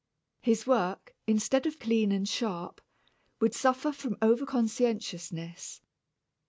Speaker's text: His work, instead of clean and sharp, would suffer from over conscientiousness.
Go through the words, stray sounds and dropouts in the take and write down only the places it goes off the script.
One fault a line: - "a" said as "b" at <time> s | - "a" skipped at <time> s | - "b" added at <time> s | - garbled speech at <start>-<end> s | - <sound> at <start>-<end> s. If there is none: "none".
none